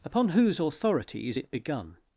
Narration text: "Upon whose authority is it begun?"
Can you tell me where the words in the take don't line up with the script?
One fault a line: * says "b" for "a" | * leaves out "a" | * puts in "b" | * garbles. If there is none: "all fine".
all fine